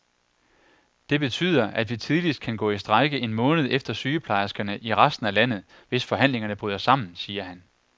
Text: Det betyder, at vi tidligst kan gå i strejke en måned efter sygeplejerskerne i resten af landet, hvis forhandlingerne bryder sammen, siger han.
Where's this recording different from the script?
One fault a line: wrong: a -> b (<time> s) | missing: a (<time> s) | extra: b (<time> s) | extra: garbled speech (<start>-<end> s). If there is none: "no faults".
no faults